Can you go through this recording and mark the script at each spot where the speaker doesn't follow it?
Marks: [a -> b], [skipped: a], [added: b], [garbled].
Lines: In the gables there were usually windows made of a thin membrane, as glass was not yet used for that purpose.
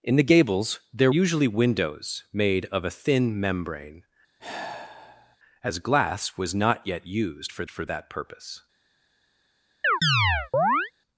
In the gables there [skipped: were] usually windows made of a thin membrane, as glass was not yet used for [added: for] that purpose.